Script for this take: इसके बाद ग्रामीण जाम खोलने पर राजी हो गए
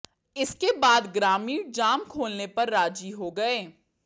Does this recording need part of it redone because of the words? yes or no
no